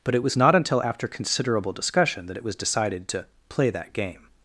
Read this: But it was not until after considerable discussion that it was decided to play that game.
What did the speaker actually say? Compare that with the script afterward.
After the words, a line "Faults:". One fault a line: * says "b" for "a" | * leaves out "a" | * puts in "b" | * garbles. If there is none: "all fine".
But it was not until after considerable discussion that it was decided to play that game.
Faults:
all fine